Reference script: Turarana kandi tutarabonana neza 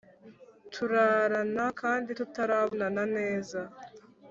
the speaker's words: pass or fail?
pass